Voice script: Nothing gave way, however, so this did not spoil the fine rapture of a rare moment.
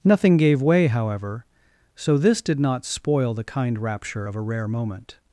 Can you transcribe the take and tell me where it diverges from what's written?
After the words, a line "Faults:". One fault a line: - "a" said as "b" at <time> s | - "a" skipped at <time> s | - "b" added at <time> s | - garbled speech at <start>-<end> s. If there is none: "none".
Nothing gave way, however, so this did not spoil the kind rapture of a rare moment.
Faults:
- "fine" said as "kind" at 3.4 s